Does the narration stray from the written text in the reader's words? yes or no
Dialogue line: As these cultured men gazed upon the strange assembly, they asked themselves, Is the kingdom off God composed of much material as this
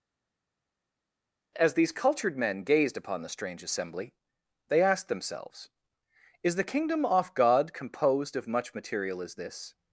no